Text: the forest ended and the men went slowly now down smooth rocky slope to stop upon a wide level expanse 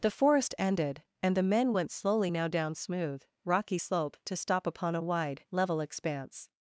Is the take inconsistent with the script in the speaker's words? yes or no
no